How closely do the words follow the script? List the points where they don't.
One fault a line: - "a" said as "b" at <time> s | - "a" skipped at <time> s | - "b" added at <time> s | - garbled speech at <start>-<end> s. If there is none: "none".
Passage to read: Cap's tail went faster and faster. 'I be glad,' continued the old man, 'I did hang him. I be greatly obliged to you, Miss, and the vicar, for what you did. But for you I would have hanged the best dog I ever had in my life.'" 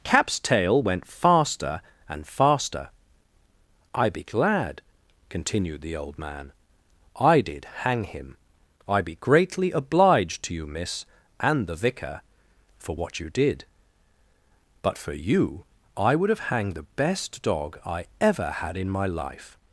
none